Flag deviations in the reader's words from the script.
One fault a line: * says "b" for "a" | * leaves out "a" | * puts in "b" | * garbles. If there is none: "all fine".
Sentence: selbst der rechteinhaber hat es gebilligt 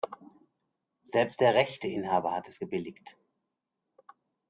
all fine